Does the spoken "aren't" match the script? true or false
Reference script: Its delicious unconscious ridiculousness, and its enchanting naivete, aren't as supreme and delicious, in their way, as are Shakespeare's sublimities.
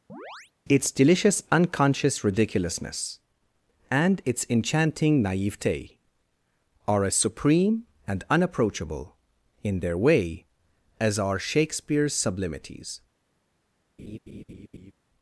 false